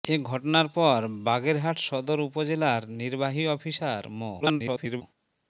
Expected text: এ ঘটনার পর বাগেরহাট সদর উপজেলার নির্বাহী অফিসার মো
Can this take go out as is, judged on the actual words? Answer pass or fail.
fail